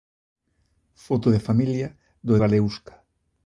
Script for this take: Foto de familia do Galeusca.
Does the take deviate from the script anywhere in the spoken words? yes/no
no